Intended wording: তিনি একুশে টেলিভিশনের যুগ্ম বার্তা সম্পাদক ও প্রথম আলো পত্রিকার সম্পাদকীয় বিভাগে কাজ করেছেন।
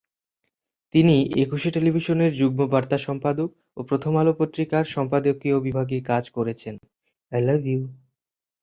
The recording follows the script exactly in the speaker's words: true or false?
true